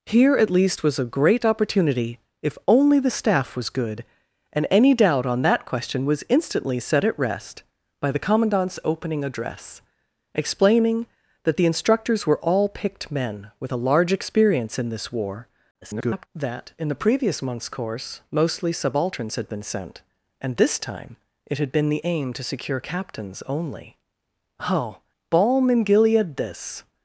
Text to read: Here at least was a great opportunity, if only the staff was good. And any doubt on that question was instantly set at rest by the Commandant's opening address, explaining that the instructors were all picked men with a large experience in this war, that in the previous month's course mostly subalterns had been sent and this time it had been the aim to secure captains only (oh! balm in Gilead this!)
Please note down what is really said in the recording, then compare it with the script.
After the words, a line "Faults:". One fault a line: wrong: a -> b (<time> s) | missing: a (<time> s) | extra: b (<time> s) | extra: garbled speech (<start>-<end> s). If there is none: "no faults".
Here at least was a great opportunity, if only the staff was good. And any doubt on that question was instantly set at rest by the Commandant's opening address, explaining that the instructors were all picked men with a large experience in this war, [garbled] that in the previous month's course mostly subalterns had been sent and this time it had been the aim to secure captains only (oh! balm in Gilead this!)
Faults:
extra: garbled speech (15.8-16.3 s)